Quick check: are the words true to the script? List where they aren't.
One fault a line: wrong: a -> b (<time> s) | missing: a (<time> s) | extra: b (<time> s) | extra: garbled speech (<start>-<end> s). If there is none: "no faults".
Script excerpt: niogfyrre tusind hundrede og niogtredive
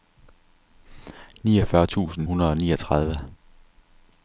no faults